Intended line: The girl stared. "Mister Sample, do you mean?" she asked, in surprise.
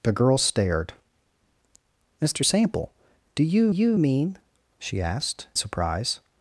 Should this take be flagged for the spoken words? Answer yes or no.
yes